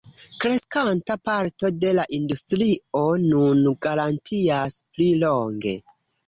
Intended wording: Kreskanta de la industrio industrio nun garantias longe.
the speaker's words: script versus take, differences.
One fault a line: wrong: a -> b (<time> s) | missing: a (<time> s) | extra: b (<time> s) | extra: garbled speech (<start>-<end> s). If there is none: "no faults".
extra: parto (1.3 s)
missing: industrio (3.0 s)
extra: pli (4.9 s)